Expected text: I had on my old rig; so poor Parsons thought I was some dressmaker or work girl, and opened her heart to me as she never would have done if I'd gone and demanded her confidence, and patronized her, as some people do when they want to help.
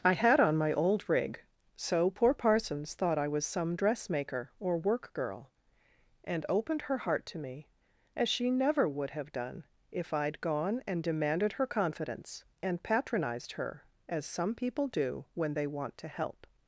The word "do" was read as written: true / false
true